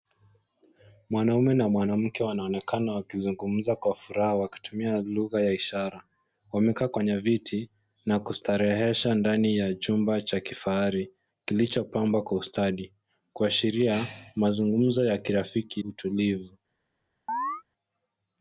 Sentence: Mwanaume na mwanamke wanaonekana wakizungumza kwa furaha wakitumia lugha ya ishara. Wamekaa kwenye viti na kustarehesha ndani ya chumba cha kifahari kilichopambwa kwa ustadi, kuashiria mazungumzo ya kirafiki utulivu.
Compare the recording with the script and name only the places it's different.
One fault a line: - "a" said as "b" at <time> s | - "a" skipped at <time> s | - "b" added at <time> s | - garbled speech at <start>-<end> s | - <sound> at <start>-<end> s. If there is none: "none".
- chirp at 17.3-17.6 s